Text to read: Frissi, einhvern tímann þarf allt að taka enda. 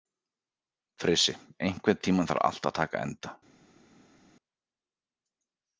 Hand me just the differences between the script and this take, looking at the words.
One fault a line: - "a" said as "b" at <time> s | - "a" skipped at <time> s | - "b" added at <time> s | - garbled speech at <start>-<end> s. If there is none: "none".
none